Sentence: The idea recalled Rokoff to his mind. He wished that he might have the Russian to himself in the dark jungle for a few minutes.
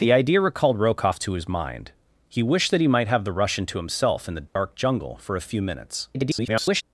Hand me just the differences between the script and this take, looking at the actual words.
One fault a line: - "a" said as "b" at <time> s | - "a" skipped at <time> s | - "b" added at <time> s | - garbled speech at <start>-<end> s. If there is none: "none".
- garbled speech at 6.1-6.8 s